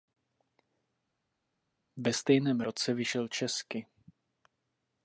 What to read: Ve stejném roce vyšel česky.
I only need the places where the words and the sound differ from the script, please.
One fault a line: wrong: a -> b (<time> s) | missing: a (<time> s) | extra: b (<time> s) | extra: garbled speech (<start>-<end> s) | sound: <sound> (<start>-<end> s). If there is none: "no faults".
no faults